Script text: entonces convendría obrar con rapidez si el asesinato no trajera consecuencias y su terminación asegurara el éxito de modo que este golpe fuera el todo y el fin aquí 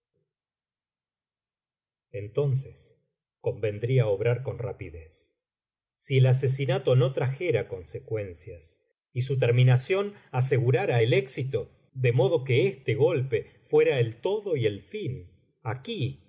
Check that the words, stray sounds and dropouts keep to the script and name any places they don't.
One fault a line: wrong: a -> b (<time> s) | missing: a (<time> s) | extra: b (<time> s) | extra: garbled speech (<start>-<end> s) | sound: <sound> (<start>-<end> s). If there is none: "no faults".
no faults